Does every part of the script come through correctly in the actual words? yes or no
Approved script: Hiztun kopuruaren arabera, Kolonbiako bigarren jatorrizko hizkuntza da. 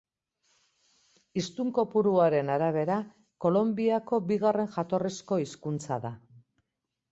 yes